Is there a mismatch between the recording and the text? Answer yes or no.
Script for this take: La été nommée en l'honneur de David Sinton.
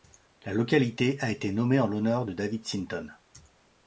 yes